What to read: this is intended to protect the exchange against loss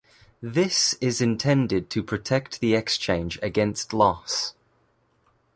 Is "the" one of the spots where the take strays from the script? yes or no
no